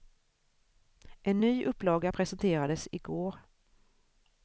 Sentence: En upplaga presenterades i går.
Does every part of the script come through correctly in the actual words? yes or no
no